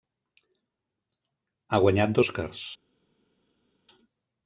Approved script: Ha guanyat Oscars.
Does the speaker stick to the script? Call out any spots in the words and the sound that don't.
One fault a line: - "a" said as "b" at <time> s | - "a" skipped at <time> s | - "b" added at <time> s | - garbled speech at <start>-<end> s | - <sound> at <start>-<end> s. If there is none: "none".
none